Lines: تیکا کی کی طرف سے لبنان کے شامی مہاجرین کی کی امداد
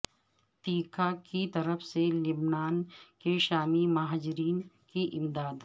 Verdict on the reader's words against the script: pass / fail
fail